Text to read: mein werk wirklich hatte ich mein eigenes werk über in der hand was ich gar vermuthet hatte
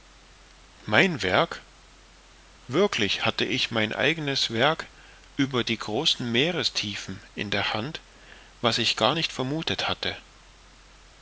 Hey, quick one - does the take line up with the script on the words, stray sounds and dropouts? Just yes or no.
no